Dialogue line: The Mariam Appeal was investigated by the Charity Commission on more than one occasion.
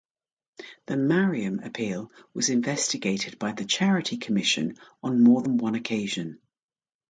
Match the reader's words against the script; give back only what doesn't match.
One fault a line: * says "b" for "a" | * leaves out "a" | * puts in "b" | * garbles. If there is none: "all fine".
all fine